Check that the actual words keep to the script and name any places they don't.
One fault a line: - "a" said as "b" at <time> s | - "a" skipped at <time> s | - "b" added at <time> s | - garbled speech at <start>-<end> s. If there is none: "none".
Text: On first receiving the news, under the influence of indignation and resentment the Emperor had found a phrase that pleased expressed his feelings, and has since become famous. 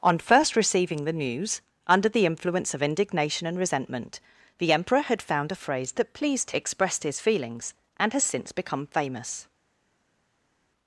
none